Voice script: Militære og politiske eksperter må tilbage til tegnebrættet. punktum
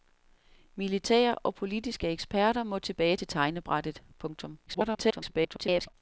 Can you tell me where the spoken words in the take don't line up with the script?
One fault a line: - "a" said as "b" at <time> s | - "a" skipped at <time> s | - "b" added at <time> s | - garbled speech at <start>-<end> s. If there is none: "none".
- garbled speech at 4.7-5.9 s